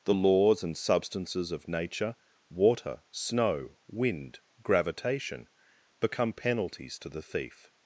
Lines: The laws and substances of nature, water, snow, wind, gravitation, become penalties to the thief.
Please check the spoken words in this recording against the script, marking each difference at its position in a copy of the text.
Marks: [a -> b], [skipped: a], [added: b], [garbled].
The laws and substances of nature, water, snow, wind, gravitation, become penalties to the thief.